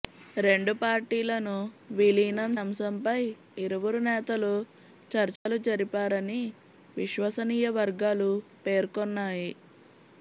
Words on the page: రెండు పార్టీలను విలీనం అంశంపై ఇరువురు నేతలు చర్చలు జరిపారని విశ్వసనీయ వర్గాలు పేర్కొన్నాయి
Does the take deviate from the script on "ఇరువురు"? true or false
false